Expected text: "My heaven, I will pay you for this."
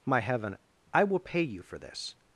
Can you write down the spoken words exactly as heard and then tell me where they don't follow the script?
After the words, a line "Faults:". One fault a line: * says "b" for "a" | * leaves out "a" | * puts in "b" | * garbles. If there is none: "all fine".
"My heaven, I will pay you for this."
Faults:
all fine